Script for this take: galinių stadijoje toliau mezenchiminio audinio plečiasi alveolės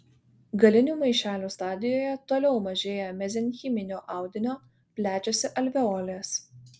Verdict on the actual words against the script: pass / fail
fail